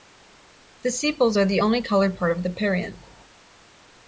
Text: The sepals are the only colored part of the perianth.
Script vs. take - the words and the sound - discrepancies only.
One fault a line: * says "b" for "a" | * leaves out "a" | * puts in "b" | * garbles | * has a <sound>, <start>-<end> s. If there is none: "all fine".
all fine